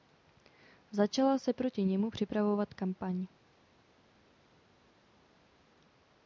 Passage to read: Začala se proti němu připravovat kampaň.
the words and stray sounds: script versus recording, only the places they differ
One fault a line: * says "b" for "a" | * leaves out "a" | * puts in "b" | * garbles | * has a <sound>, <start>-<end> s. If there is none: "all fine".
all fine